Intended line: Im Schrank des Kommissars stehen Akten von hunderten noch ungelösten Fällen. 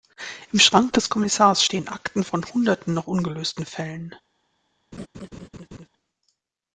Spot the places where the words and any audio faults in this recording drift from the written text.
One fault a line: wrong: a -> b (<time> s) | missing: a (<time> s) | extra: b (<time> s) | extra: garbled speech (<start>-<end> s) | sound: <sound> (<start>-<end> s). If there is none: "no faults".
sound: laugh (4.9-5.9 s)